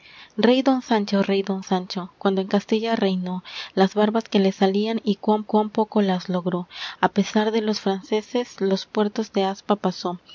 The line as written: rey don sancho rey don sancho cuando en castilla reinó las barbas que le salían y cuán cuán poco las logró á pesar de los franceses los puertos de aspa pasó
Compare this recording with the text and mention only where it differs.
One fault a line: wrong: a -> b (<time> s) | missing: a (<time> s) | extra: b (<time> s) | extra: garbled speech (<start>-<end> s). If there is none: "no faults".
no faults